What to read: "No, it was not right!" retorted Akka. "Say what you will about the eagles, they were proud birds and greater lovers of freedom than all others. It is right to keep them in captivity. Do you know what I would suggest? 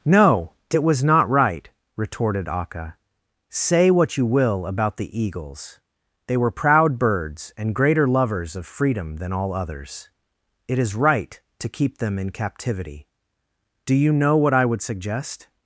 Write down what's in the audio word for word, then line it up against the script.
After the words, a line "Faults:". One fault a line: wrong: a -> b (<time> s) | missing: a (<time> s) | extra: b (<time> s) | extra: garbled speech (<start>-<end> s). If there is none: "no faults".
"No, it was not right!" retorted Akka. "Say what you will about the eagles, they were proud birds and greater lovers of freedom than all others. It is right to keep them in captivity. Do you know what I would suggest?
Faults:
no faults